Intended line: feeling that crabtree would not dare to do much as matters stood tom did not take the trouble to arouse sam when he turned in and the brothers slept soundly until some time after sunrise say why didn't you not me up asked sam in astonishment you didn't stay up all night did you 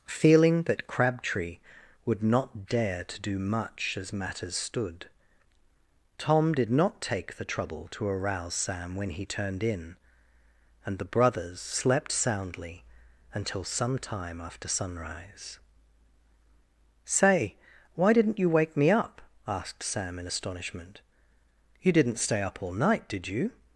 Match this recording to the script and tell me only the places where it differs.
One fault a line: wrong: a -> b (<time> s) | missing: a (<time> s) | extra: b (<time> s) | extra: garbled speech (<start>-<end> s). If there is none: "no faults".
wrong: not -> wake (18.5 s)